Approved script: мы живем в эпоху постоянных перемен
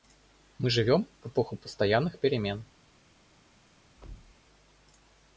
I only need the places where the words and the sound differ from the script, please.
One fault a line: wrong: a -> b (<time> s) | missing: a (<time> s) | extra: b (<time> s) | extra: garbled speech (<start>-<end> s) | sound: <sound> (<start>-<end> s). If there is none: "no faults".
sound: thud (4.0-4.4 s)